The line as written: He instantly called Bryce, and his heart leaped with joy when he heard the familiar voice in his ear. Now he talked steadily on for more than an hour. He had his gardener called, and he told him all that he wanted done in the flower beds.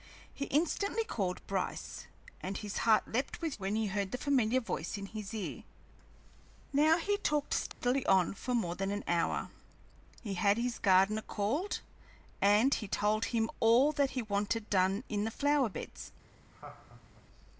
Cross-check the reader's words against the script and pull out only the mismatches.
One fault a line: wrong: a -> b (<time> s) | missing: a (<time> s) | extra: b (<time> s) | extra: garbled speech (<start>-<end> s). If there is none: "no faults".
missing: joy (3.6 s)